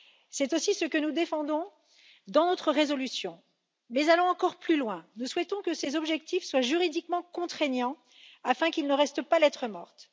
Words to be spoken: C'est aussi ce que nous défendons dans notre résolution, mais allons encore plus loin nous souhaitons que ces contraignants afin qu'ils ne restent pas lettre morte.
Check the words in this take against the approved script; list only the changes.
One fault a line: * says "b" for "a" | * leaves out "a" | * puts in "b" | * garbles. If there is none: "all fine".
* puts in "objectifs soient juridiquement"